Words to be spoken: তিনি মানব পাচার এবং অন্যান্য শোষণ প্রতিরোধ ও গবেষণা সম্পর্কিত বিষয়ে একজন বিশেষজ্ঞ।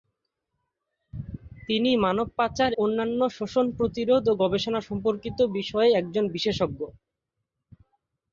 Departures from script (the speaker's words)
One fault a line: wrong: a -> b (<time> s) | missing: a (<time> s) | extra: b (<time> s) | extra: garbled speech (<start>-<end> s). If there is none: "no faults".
missing: এবং (2.7 s)